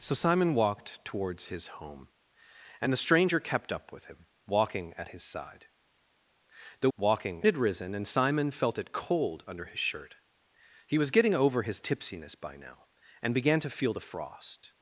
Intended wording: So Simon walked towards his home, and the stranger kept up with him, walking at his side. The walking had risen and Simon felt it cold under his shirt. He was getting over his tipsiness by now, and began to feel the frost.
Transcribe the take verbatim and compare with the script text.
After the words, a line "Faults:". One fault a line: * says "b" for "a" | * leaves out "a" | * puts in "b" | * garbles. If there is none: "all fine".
So Simon walked towards his home, and the stranger kept up with him, walking at his side. The walking had risen and Simon felt it cold under his shirt. He was getting over his tipsiness by now, and began to feel the frost.
Faults:
all fine